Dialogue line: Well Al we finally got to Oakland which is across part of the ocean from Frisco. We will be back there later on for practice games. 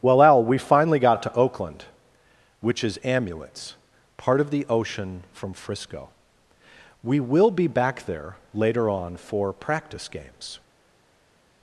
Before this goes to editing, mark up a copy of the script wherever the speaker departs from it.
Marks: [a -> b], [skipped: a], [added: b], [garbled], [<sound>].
Well Al we finally got to Oakland which is [across -> amulets] part of the ocean from Frisco. We will be back there later on for practice games.